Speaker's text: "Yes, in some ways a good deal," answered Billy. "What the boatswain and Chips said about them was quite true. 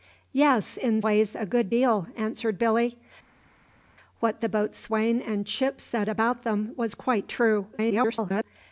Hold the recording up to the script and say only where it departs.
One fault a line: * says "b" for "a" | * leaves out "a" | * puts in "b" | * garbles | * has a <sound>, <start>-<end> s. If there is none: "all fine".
* leaves out "some"
* garbles